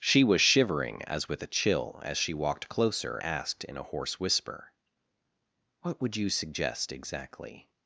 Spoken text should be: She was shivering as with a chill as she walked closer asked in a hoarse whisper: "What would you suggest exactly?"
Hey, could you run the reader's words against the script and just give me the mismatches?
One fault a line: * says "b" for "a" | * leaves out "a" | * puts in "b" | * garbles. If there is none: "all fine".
all fine